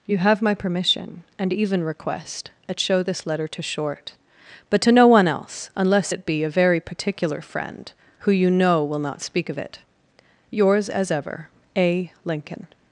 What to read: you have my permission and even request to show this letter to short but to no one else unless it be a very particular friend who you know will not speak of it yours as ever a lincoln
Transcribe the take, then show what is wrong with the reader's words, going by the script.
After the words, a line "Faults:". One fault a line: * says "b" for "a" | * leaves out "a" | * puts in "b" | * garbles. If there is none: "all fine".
you have my permission and even request at show this letter to short but to no one else unless it be a very particular friend who you know will not speak of it yours as ever a lincoln
Faults:
* says "at" for "to"